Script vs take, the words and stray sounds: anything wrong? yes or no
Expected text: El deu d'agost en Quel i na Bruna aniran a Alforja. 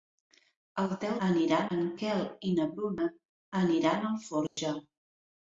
yes